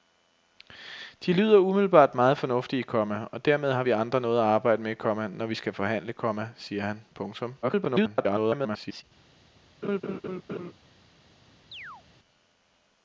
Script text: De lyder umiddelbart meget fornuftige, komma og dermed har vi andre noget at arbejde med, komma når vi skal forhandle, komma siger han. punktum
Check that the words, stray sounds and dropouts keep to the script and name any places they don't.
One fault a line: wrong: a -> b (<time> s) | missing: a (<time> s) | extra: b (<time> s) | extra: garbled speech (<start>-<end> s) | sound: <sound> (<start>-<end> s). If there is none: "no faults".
extra: garbled speech (7.6-9.0 s)
sound: laugh (9.8-10.7 s)
sound: chirp (11.7-12.0 s)